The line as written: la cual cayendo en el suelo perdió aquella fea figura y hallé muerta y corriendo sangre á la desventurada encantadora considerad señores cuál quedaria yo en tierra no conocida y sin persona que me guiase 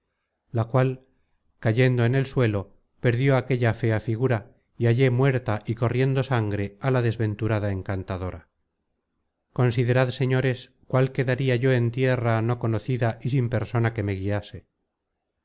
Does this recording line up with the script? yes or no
yes